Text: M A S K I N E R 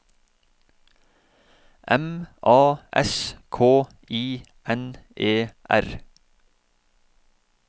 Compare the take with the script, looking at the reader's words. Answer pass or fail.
pass